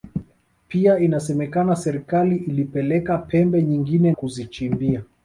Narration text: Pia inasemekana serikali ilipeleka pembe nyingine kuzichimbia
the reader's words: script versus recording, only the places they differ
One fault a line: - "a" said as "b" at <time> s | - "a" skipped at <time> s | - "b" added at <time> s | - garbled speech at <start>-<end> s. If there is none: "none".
none